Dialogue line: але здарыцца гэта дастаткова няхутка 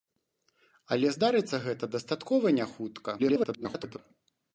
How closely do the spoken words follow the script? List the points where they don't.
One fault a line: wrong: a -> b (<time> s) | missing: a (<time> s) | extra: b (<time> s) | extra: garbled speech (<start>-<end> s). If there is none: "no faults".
extra: garbled speech (3.2-4.0 s)